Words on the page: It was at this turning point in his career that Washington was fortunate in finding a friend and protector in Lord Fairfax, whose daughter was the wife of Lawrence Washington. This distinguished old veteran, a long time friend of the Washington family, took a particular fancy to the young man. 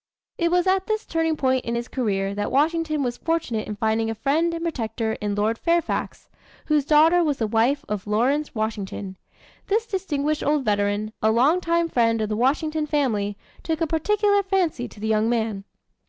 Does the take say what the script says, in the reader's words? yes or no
yes